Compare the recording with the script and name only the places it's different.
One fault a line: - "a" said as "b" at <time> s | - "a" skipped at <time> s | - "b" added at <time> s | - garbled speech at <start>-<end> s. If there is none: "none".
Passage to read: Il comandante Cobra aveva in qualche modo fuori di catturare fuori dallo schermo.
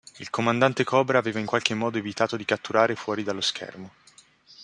- "fuori" said as "evitato" at 2.0 s